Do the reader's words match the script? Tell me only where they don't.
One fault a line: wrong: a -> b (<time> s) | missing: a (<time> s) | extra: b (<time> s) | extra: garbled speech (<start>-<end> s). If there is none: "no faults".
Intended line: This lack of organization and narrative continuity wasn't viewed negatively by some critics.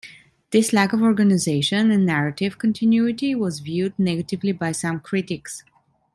wrong: wasn't -> was (3.4 s)